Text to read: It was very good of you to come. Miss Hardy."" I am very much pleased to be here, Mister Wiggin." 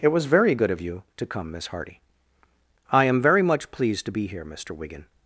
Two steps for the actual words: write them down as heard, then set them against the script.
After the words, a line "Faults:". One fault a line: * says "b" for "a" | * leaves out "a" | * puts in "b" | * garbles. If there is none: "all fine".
It was very good of you to come. Miss Hardy."" I am very much pleased to be here, Mister Wiggin."
Faults:
all fine